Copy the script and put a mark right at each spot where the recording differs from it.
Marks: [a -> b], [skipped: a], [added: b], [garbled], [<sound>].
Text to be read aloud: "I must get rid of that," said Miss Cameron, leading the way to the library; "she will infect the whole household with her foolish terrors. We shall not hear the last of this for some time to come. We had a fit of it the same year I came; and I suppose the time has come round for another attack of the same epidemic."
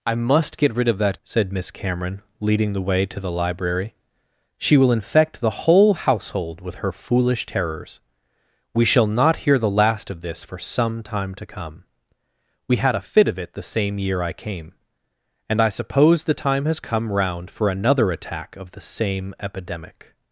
"I must get rid of that," said Miss Cameron, leading the way to the library; "she will infect the whole household with her foolish terrors. We shall not hear the last of this for some time to come. We had a fit of it the same year I came; and I suppose the time has come round for another attack of the same epidemic."